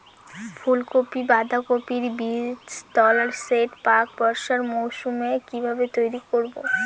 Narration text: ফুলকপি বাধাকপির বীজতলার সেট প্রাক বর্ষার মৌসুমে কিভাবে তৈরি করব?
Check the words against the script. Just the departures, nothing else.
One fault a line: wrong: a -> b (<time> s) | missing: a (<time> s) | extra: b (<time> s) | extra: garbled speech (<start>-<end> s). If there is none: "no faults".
no faults